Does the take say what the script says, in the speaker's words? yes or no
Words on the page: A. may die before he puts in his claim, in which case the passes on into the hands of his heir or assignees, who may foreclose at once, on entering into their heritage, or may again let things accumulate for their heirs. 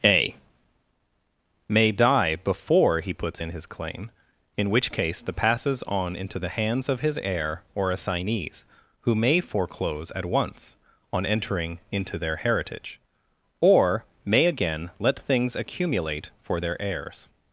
yes